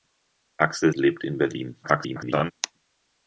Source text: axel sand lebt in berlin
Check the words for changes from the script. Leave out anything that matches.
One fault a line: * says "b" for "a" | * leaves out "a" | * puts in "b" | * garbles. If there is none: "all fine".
* leaves out "sand"
* garbles